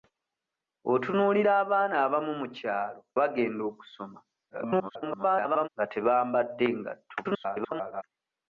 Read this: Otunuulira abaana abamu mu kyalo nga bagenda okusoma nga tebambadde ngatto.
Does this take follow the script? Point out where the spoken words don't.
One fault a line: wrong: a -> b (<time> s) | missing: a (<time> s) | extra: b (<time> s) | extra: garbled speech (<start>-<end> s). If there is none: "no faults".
missing: nga (3.0 s)
extra: garbled speech (4.5-5.7 s)
extra: garbled speech (7.2-8.0 s)